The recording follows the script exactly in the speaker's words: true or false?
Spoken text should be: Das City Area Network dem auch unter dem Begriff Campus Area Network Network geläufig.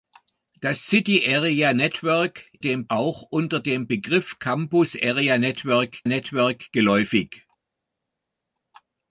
true